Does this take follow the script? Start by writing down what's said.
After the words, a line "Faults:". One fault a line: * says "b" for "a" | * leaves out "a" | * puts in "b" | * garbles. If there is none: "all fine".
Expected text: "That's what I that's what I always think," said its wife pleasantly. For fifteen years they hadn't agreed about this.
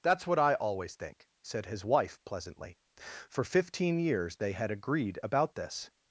"That's what I always think," said his wife pleasantly. For fifteen years they had agreed about this.
Faults:
* leaves out "that's what I"
* says "his" for "its"
* says "had" for "hadn't"